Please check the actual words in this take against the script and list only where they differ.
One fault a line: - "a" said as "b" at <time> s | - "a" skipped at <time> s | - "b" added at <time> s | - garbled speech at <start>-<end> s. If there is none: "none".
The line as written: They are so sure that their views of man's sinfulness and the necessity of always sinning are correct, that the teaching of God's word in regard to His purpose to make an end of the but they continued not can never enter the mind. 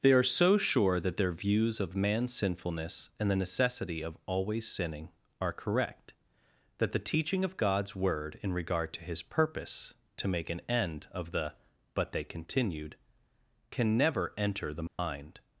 - "not" skipped at 12.9 s